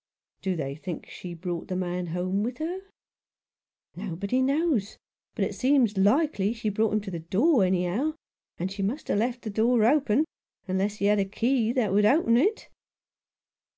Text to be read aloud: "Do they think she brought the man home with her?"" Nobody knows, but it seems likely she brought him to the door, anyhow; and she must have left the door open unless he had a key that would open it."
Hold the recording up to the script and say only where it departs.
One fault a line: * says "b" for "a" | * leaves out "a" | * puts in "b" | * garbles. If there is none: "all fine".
all fine